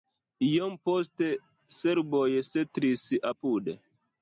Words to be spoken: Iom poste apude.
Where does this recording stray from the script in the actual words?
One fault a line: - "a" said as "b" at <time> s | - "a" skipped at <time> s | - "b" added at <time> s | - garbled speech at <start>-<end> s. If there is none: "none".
- "serboj setlis" added at 1.8 s